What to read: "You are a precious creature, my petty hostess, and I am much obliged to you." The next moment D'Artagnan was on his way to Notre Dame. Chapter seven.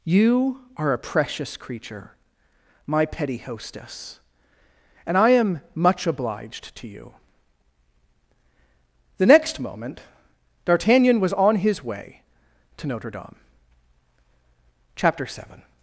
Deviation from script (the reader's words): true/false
false